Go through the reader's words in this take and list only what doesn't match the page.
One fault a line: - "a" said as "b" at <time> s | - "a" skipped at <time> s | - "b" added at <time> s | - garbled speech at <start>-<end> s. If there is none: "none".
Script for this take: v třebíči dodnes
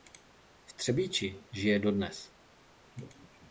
- "žije" added at 1.5 s